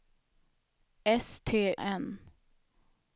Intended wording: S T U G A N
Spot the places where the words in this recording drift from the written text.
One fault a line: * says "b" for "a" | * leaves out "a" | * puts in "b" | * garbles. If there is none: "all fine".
* leaves out "U G A"